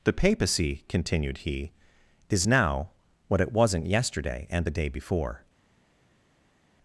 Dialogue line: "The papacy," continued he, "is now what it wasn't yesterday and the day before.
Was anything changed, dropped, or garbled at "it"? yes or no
no